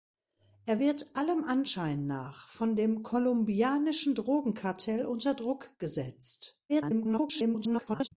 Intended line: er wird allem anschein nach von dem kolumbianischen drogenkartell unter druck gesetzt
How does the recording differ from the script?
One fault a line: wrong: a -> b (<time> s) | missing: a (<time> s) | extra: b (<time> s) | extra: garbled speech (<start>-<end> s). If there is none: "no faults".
extra: garbled speech (6.7-8.1 s)